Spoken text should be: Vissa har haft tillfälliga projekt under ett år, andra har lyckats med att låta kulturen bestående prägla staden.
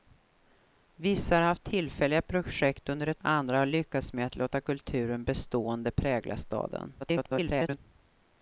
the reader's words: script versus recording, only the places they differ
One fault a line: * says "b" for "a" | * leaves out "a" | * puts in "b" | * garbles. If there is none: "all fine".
* leaves out "år"
* garbles